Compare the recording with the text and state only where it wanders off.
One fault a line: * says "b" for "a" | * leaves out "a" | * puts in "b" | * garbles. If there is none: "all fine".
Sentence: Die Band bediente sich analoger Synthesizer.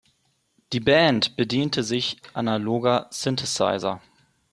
all fine